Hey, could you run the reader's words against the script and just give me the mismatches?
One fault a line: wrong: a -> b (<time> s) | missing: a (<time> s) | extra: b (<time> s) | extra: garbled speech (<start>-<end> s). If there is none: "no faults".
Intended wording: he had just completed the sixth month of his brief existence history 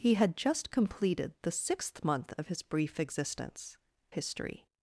no faults